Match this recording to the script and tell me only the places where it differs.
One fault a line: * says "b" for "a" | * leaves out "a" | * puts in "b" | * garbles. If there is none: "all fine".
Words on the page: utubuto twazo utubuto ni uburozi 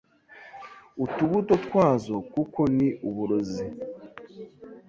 * says "kuko" for "utubuto"